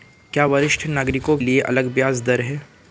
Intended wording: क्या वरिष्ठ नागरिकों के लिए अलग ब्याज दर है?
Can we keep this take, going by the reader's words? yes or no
no